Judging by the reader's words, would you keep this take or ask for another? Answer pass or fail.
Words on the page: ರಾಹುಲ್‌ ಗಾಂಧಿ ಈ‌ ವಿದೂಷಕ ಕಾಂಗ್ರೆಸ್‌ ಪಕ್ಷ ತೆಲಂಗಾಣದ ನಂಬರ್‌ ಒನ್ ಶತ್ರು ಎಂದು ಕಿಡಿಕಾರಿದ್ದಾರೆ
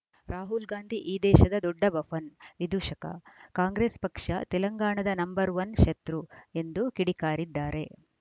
fail